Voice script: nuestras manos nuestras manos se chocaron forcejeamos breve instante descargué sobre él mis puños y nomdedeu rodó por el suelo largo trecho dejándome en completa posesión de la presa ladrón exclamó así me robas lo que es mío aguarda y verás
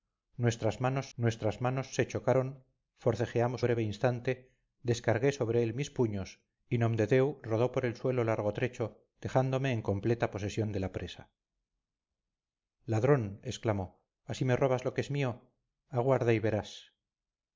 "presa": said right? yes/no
yes